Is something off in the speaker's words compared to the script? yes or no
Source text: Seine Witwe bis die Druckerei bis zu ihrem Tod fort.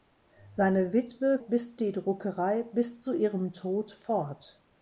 no